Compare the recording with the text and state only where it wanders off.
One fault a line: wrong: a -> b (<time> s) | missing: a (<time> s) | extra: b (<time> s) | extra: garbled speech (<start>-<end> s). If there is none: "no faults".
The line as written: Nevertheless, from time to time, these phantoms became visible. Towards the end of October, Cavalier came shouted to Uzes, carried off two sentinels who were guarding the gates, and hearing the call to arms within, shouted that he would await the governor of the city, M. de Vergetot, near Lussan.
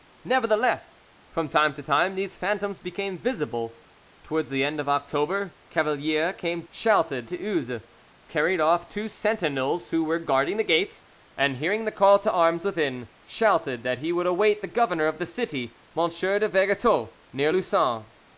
no faults